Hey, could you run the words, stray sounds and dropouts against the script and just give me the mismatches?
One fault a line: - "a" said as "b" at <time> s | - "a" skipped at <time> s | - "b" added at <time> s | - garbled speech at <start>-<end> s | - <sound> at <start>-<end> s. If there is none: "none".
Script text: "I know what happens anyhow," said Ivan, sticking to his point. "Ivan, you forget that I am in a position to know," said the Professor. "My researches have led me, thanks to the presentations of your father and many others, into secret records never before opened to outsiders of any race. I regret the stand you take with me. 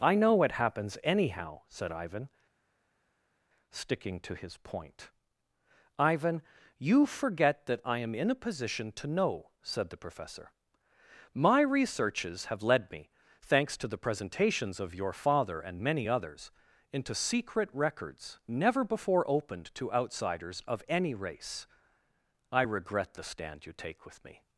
none